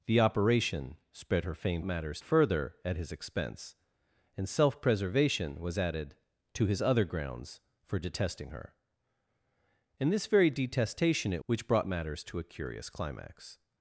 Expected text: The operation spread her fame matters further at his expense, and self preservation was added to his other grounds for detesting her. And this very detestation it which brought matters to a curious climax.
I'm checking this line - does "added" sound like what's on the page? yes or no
yes